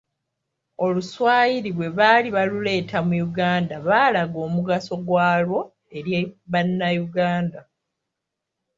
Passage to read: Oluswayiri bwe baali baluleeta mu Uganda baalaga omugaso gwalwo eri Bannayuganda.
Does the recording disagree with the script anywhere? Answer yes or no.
no